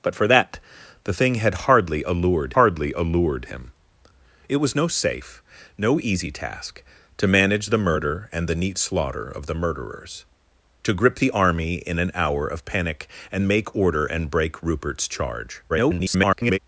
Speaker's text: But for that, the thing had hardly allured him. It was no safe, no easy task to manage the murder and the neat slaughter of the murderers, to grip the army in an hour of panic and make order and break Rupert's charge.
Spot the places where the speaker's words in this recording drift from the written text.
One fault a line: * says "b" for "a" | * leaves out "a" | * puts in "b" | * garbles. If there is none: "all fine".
* puts in "hardly allured"
* garbles